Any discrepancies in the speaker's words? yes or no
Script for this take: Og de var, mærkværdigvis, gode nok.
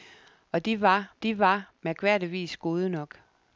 yes